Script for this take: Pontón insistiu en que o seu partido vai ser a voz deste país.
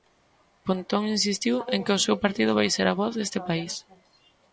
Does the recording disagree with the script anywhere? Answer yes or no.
no